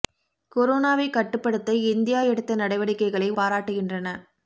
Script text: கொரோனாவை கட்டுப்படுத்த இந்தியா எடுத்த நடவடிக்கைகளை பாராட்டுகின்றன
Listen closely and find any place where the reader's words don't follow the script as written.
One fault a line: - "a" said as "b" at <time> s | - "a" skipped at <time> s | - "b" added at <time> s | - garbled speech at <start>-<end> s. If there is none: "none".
none